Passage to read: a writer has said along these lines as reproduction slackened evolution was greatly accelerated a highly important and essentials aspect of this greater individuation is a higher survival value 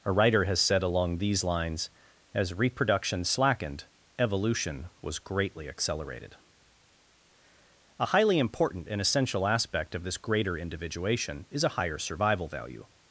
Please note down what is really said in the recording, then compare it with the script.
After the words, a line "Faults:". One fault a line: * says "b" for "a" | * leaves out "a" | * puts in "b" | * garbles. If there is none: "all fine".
a writer has said along these lines as reproduction slackened evolution was greatly accelerated a highly important and essential aspect of this greater individuation is a higher survival value
Faults:
* says "essential" for "essentials"